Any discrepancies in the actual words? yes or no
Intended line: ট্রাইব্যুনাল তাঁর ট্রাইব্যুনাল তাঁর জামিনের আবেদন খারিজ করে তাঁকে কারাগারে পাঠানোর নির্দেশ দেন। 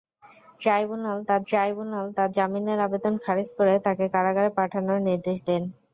no